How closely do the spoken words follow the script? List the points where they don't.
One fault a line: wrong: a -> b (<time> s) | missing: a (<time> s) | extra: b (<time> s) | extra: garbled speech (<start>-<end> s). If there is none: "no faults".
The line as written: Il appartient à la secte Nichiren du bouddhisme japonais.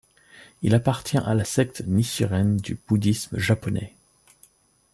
no faults